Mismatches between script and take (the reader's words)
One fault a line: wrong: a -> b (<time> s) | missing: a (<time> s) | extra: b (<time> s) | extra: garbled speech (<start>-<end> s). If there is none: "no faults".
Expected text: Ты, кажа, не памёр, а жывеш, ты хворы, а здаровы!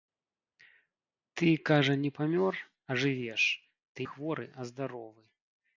no faults